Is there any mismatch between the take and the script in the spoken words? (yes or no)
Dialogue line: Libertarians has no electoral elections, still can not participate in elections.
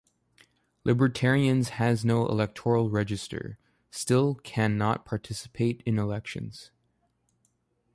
yes